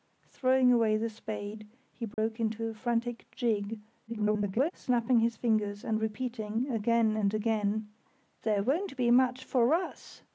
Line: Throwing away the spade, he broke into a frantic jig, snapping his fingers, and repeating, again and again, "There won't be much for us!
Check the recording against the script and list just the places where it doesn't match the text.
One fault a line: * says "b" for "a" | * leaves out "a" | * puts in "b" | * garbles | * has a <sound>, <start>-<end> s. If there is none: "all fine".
* has a dropout, 2.1-2.2 s
* garbles